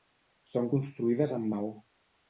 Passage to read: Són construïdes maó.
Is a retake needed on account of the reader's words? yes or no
yes